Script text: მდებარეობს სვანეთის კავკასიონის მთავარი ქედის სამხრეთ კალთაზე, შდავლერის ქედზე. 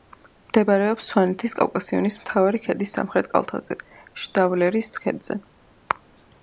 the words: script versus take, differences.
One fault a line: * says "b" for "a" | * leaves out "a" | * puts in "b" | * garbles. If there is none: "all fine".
all fine